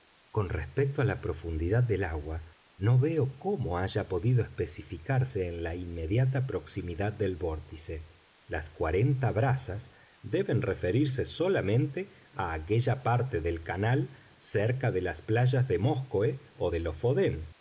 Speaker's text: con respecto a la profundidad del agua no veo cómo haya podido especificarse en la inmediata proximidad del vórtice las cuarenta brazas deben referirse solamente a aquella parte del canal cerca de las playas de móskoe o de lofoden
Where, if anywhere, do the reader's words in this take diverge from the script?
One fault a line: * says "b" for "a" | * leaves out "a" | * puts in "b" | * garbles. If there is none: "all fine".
all fine